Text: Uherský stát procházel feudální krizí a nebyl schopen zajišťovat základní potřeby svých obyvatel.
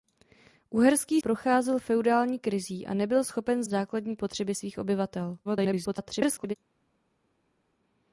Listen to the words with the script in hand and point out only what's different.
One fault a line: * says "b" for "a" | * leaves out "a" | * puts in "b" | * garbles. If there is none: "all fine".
* leaves out "stát"
* leaves out "zajišťovat"
* garbles